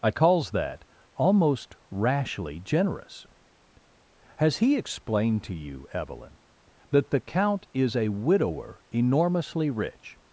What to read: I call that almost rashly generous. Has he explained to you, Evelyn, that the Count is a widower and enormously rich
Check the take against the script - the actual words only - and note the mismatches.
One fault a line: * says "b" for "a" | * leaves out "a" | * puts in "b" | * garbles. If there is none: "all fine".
* says "calls" for "call"
* leaves out "and"